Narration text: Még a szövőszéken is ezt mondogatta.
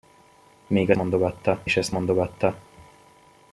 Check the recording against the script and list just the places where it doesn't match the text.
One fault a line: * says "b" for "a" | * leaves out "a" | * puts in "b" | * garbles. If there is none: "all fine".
* says "mondogatta" for "szövőszéken"